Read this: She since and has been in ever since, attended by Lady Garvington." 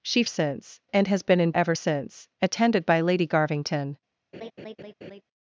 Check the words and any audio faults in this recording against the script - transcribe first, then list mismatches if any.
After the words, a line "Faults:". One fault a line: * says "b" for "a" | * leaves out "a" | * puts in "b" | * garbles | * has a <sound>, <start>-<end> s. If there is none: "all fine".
She since and has been in ever since, attended by Lady Garvington."
Faults:
* has a laugh, 4.3-5.2 s